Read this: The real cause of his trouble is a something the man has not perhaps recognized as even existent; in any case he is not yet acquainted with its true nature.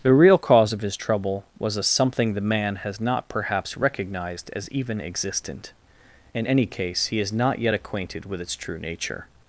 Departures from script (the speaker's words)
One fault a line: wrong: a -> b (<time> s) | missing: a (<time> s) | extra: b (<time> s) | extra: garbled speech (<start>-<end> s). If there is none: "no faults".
wrong: is -> was (1.6 s)